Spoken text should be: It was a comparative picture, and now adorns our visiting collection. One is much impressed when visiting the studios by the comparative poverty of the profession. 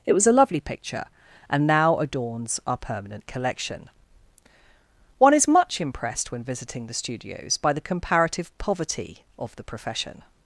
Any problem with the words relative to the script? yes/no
yes